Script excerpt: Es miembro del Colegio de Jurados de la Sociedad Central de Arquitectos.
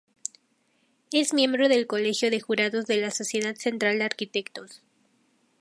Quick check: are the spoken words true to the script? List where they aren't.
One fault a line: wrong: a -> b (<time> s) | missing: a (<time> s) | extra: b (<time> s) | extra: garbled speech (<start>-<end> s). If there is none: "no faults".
no faults